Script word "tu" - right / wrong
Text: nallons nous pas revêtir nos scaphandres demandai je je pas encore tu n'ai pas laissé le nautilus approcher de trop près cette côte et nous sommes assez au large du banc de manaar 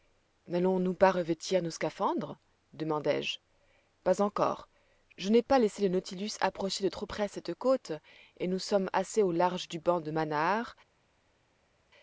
wrong